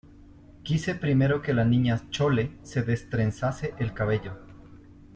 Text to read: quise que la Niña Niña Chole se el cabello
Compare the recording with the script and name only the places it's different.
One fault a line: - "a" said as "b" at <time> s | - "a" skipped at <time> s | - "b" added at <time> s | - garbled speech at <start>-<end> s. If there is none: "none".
- "primero" added at 0.9 s
- "Niña" skipped at 2.1 s
- "destrenzase" added at 2.8 s